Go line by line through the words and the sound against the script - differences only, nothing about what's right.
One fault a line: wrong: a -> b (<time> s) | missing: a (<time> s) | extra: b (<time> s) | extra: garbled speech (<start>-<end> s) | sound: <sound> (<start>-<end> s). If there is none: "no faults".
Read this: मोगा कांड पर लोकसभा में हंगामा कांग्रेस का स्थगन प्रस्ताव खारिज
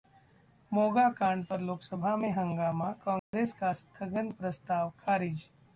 sound: dropout (3.2-3.3 s)